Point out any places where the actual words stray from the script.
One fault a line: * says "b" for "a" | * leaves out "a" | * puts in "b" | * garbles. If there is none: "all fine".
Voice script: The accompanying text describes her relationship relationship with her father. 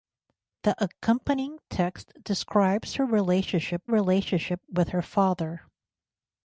all fine